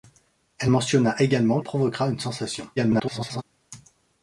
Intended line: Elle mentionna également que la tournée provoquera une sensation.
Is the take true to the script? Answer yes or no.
no